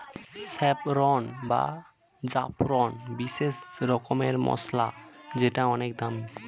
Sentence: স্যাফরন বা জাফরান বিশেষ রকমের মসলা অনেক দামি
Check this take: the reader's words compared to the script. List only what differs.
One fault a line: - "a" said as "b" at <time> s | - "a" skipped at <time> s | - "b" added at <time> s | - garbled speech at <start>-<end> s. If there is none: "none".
- "যেটা" added at 5.3 s